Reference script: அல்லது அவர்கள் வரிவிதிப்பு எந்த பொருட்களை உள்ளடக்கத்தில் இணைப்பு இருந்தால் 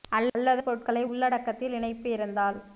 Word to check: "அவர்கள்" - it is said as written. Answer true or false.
false